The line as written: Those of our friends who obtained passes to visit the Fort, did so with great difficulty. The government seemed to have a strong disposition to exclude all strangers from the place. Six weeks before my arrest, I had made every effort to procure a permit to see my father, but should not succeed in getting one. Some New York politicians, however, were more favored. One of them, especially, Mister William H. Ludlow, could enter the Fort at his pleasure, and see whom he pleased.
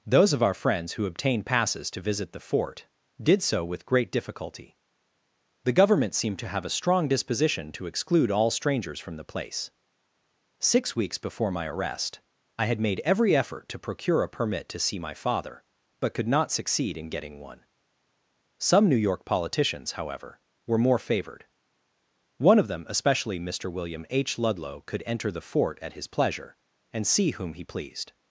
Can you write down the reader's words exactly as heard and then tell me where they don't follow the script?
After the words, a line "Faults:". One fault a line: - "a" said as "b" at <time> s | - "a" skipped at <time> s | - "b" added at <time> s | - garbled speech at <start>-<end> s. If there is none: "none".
Those of our friends who obtained passes to visit the Fort, did so with great difficulty. The government seemed to have a strong disposition to exclude all strangers from the place. Six weeks before my arrest, I had made every effort to procure a permit to see my father, but could not succeed in getting one. Some New York politicians, however, were more favored. One of them, especially, Mister William H. Ludlow, could enter the Fort at his pleasure, and see whom he pleased.
Faults:
- "should" said as "could" at 16.1 s